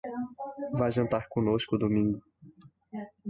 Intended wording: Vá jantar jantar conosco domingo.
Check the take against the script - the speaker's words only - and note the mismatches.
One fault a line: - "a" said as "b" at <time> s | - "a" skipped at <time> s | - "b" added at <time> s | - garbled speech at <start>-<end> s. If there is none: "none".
- "jantar" skipped at 1.2 s